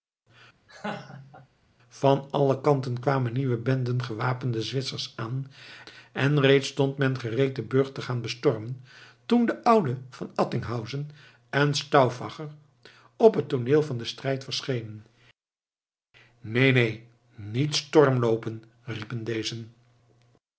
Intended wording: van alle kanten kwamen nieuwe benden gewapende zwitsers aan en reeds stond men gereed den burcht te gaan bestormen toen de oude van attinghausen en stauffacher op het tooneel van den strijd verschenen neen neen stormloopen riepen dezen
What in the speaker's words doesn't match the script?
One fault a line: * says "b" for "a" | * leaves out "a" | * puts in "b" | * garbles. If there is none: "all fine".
* puts in "niet"